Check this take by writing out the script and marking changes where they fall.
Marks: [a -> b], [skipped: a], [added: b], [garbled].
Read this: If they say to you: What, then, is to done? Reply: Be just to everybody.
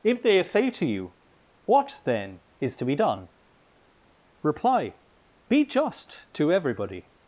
If they say to you: What, then, is to [added: be] done? Reply: Be just to everybody.